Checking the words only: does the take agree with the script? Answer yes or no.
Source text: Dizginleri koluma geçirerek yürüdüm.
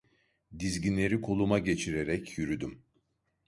yes